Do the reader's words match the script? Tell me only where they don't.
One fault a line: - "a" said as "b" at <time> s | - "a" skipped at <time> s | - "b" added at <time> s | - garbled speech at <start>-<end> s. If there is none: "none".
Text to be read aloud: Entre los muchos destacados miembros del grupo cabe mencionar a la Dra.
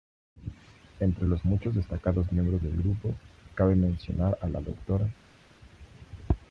none